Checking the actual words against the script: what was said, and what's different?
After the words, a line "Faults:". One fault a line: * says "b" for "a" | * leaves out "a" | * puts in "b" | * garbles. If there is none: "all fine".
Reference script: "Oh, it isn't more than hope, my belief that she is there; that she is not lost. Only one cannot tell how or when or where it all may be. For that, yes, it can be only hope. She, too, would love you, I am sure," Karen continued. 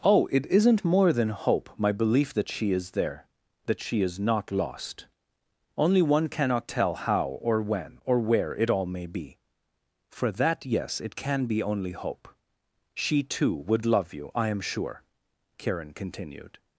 "Oh, it isn't more than hope, my belief that she is there; that she is not lost. Only one cannot tell how or when or where it all may be. For that, yes, it can be only hope. She, too, would love you, I am sure," Karen continued.
Faults:
all fine